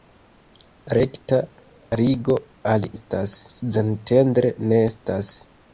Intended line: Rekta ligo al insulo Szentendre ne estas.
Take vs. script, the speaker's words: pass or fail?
fail